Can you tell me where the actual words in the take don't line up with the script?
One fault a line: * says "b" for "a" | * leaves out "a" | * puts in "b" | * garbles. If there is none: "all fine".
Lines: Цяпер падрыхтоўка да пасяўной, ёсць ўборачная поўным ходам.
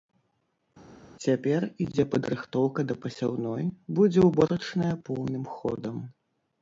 * puts in "ідзе"
* says "будзе" for "ёсць"